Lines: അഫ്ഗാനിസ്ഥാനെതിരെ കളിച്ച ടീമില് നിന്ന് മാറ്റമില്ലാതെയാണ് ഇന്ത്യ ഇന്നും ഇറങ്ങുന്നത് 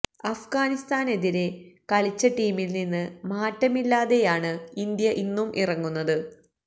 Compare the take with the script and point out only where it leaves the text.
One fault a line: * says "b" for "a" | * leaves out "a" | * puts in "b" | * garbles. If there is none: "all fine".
all fine